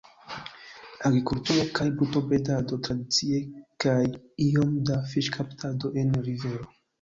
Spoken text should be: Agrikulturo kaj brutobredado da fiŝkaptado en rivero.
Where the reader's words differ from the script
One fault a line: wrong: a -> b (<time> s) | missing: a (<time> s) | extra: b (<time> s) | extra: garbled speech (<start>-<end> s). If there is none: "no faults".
extra: tradicie kaj iom (2.9 s)